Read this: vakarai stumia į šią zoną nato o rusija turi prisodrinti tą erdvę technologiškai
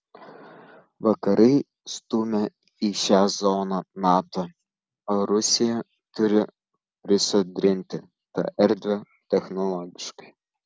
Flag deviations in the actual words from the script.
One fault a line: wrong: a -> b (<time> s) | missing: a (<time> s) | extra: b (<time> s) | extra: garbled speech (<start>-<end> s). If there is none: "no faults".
no faults